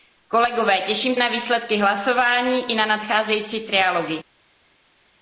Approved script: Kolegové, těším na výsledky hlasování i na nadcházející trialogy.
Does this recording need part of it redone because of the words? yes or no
no